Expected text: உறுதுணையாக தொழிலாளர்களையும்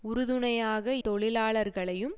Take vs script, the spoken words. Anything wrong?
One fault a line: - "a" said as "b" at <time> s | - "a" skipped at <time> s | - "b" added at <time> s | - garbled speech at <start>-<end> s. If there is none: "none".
none